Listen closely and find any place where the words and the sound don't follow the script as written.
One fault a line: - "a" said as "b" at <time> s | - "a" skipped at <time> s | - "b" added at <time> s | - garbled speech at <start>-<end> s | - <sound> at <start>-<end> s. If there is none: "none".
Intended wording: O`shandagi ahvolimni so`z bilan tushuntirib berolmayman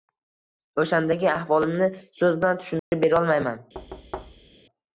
- dropout at 2.8-2.9 s
- thud at 3.7-4.6 s